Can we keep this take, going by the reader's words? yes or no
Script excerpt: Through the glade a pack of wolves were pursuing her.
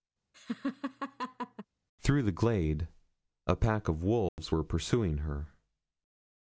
yes